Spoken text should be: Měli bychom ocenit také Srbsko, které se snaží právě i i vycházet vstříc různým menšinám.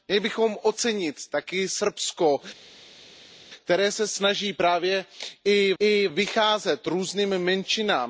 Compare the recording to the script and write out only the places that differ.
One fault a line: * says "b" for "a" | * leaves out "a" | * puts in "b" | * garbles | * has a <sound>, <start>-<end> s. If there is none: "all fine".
all fine